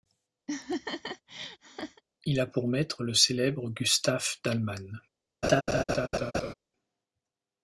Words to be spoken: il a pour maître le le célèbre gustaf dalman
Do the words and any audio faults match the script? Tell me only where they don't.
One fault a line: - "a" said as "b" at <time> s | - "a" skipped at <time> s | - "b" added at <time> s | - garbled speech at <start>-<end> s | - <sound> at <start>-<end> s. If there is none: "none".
- laugh at 0.5-2.0 s
- "le" skipped at 3.1 s
- laugh at 5.4-6.5 s